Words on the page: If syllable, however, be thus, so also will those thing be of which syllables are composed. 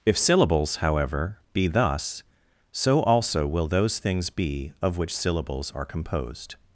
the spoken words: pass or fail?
fail